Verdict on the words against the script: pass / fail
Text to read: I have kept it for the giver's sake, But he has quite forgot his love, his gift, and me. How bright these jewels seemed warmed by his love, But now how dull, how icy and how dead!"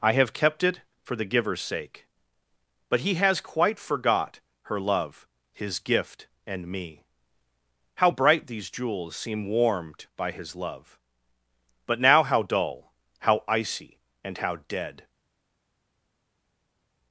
fail